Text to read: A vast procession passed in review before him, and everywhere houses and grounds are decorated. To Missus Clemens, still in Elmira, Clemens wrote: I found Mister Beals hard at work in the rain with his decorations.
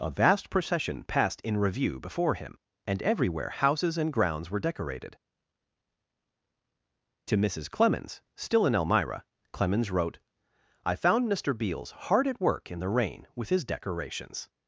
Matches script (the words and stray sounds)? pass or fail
fail